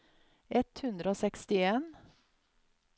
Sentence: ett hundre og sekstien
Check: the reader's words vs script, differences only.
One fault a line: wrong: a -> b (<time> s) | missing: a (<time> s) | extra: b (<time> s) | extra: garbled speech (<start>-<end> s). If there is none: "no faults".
no faults